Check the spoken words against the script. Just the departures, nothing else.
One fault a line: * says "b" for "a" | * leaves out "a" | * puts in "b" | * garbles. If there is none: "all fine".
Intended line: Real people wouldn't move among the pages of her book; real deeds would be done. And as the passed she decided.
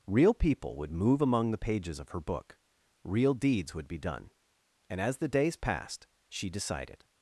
* says "would" for "wouldn't"
* puts in "days"